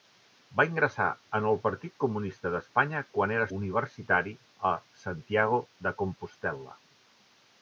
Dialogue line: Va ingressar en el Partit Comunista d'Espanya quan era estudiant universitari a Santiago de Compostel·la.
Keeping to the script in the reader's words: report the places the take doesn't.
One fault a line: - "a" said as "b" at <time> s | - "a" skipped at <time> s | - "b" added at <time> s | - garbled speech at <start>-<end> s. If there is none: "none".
- "estudiant" skipped at 3.5 s